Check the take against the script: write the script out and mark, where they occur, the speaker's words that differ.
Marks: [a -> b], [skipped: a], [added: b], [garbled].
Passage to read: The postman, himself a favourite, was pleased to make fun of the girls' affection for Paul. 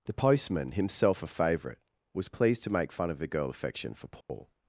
The postman, himself a favourite, was pleased to make fun of the [girls' -> girl] affection for Paul.